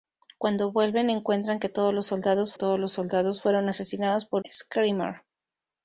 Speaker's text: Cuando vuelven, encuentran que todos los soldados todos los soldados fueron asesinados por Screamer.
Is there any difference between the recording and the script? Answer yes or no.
no